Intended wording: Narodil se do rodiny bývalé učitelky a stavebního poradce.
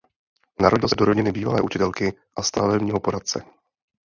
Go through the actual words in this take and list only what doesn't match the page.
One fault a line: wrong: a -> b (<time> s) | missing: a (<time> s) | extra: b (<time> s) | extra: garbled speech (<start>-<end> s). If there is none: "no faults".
no faults